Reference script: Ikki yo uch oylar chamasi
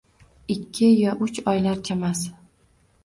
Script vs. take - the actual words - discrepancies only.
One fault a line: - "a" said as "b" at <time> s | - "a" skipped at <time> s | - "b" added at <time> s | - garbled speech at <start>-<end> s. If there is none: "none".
none